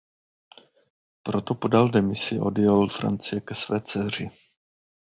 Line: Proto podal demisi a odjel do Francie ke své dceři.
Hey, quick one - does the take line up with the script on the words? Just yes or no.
no